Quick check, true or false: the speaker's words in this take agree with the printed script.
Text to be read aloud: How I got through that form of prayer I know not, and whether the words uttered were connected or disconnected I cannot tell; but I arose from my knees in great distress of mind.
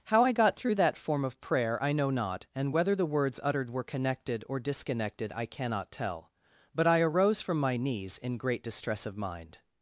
true